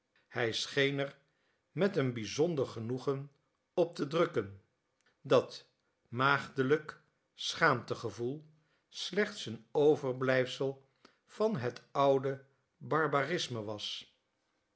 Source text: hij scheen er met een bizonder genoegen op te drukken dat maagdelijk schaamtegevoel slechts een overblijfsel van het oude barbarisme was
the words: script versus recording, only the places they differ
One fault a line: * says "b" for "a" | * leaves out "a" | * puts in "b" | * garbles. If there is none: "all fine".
all fine